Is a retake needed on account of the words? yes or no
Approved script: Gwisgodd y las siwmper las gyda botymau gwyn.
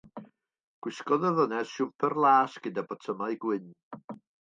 yes